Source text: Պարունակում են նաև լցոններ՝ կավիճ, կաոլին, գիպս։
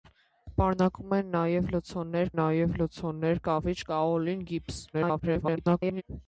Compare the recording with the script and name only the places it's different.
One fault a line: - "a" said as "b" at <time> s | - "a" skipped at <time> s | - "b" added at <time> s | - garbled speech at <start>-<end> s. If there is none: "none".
- "նաև լցոններ" added at 2.4 s
- garbled speech at 4.9-6.0 s